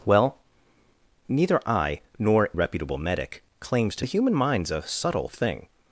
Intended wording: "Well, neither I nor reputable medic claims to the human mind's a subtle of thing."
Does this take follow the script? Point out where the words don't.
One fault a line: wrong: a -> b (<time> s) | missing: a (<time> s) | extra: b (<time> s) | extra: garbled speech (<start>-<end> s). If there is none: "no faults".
no faults